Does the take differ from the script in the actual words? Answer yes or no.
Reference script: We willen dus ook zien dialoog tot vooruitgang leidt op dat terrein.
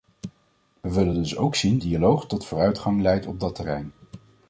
no